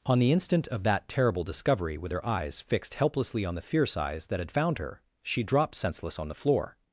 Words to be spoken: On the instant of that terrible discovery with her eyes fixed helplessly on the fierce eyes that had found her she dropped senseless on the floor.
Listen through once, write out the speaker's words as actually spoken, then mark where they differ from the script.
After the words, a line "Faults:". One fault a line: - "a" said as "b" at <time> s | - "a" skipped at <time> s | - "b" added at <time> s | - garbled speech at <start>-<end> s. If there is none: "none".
On the instant of that terrible discovery with her eyes fixed helplessly on the fierce eyes that had found her she dropped senseless on the floor.
Faults:
none